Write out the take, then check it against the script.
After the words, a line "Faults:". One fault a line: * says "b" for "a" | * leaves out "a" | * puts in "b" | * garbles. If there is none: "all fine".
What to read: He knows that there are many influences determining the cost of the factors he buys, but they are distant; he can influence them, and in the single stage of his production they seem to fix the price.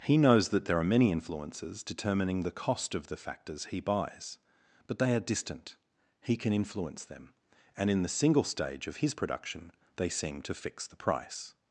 He knows that there are many influences determining the cost of the factors he buys, but they are distant; he can influence them, and in the single stage of his production they seem to fix the price.
Faults:
all fine